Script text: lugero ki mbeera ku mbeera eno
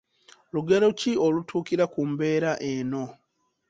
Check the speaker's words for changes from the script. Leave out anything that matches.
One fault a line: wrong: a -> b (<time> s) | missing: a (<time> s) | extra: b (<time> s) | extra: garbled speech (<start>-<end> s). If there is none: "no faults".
wrong: mbeera -> olutuukira (1.2 s)